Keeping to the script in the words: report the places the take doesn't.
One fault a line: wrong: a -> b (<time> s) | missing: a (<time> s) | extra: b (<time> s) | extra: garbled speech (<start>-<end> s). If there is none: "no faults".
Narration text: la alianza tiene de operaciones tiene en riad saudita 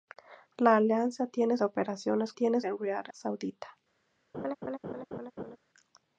no faults